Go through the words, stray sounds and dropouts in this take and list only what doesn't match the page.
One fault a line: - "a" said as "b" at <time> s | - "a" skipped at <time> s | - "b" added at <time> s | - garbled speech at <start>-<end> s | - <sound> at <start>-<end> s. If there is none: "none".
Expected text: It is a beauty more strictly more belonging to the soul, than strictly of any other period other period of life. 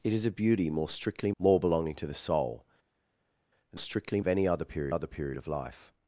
none